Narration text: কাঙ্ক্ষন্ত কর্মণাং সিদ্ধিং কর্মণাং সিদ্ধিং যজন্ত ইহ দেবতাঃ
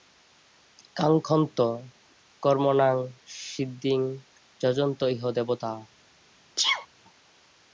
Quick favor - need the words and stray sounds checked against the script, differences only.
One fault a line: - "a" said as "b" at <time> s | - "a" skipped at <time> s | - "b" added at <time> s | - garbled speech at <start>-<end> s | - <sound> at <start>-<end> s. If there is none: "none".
- "কর্মণাং সিদ্ধিং" skipped at 4.0 s
- sneeze at 6.6-6.9 s